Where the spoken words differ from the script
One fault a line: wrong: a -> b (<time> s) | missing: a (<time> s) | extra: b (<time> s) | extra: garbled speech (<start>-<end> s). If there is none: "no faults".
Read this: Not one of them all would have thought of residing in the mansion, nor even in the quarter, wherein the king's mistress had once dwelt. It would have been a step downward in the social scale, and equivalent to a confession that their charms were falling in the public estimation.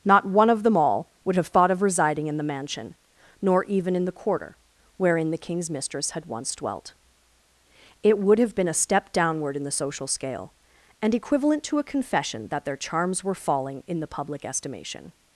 no faults